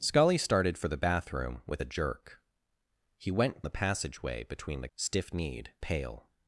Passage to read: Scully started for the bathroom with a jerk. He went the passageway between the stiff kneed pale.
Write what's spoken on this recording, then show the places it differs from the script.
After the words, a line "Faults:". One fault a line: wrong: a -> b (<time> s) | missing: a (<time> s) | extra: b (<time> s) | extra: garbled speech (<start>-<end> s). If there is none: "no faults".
Scully started for the bathroom with a jerk. He went the passageway between the stiff kneed pale.
Faults:
no faults